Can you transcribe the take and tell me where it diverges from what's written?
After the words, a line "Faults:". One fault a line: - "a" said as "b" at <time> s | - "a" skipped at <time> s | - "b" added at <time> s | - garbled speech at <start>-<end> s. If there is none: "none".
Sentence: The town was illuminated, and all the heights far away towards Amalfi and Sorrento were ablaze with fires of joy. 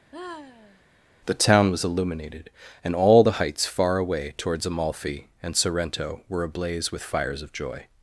The town was illuminated, and all the heights far away towards Amalfi and Sorrento were ablaze with fires of joy.
Faults:
none